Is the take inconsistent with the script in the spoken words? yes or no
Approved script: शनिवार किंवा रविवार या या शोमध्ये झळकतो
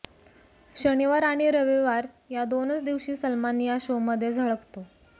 yes